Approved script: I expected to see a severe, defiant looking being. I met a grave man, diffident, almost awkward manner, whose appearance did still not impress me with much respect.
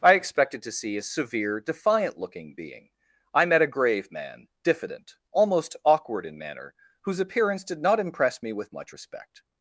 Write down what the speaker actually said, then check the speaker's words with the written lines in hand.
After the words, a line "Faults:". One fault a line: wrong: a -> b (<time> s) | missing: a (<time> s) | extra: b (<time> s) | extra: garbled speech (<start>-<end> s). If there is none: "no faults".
I expected to see a severe, defiant looking being. I met a grave man, diffident, almost awkward in manner, whose appearance did not impress me with much respect.
Faults:
extra: in (6.3 s)
missing: still (7.8 s)